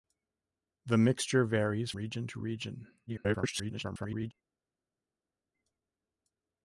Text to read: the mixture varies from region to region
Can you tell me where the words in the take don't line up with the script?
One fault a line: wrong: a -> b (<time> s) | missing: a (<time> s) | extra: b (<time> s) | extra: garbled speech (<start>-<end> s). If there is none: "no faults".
missing: from (1.9 s)
extra: garbled speech (3.1-4.3 s)